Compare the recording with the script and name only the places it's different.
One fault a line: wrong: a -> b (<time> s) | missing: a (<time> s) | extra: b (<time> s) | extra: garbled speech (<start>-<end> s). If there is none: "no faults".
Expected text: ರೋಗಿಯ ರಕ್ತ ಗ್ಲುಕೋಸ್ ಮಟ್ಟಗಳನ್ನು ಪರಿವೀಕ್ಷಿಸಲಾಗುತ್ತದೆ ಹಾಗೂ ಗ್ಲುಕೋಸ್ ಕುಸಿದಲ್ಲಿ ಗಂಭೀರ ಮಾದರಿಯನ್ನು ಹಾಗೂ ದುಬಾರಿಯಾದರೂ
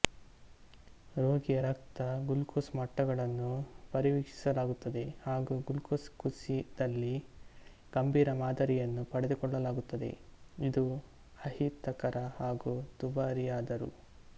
extra: ಪಡೆದುಕೊಳ್ಳಲಾಗುತ್ತದೆ ಇದು ಅಹಿತಕರ (9.1 s)